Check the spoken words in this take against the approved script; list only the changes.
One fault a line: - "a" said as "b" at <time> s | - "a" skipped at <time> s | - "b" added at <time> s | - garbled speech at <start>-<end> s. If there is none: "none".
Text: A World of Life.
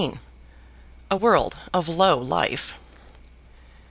- "Low" added at 1.9 s